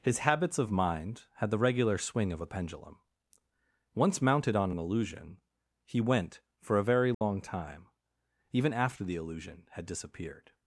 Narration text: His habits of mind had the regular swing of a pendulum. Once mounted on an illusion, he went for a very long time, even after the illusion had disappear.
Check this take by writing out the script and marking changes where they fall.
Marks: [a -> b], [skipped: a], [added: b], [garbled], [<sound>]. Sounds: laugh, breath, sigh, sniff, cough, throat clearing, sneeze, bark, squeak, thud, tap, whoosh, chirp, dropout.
His habits of mind had the regular swing of a pendulum. Once mounted on an illusion, he went for a very long [dropout] time, even after the illusion had [disappear. -> disappeared]